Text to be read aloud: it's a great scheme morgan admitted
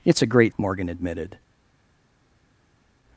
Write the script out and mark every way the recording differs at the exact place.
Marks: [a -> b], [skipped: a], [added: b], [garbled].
it's a great [skipped: scheme] morgan admitted